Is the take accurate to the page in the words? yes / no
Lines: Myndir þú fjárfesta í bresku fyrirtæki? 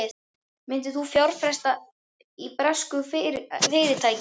yes